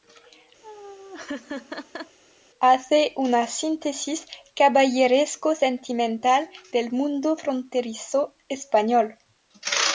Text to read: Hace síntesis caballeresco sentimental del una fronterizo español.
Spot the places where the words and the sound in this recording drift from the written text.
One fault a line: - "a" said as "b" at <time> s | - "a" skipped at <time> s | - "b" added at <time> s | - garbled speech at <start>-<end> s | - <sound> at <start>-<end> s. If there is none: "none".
- laugh at 0.6-2.2 s
- "una" added at 3.2 s
- "una" said as "mundo" at 6.9 s